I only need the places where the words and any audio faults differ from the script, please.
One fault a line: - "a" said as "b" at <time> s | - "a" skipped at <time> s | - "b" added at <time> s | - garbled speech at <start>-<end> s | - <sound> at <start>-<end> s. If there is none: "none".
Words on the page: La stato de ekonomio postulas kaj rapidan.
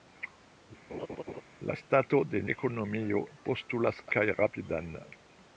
- laugh at 0.9-1.4 s